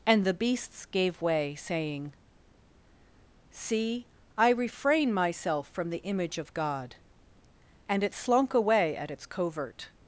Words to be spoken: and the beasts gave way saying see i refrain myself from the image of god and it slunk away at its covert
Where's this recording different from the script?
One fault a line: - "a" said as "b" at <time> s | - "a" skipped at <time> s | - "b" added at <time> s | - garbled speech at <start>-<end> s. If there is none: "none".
none